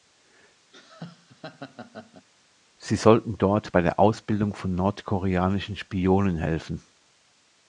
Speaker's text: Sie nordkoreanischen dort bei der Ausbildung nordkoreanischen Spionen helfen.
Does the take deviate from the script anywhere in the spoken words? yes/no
yes